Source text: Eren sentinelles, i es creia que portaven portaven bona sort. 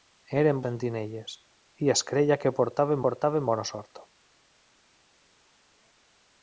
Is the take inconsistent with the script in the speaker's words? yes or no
no